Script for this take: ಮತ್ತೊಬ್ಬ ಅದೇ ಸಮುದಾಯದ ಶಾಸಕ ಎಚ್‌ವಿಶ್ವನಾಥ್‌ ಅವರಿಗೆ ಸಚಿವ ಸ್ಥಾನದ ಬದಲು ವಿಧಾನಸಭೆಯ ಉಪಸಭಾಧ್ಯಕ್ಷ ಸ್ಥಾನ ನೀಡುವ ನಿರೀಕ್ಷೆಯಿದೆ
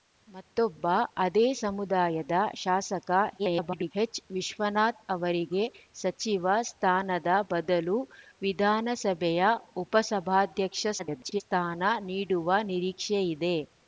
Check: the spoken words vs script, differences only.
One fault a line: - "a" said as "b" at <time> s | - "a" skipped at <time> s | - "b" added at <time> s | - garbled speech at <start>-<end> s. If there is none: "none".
- garbled speech at 3.4-3.9 s
- garbled speech at 11.0-11.4 s